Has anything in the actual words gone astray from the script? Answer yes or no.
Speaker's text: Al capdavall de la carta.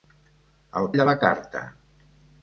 yes